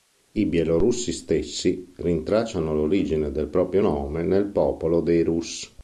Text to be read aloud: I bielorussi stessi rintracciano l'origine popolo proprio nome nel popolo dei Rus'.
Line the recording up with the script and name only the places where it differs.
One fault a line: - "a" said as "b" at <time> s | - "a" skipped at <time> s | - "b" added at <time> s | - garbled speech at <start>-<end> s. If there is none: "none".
- "popolo" said as "del" at 3.3 s